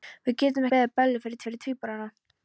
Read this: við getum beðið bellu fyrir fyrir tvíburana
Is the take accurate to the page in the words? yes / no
yes